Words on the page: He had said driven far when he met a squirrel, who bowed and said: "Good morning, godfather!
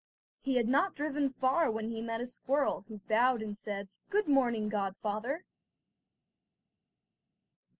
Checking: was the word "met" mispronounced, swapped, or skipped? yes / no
no